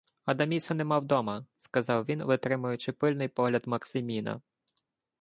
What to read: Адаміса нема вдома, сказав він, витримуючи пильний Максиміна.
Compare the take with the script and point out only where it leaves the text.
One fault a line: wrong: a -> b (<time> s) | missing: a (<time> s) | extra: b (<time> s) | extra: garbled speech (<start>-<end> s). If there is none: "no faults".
extra: погляд (3.3 s)